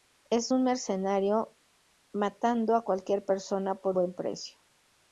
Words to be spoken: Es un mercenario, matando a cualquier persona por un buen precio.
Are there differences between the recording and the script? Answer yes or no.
yes